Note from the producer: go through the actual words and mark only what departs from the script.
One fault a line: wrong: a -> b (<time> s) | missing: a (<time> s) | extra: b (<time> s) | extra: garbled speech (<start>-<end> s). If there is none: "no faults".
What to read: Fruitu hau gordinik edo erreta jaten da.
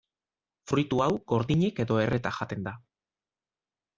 no faults